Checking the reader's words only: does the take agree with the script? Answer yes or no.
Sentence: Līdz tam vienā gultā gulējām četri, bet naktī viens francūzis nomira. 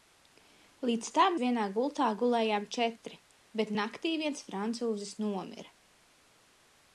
yes